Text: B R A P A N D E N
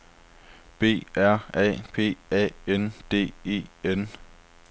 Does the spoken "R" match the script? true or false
true